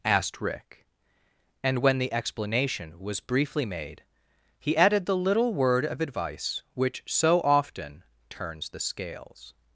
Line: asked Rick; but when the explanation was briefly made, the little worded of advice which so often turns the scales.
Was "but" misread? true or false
true